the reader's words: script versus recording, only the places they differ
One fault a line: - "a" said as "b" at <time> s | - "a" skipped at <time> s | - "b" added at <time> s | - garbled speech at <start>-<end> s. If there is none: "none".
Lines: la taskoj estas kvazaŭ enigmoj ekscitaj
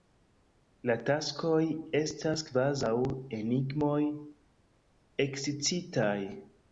none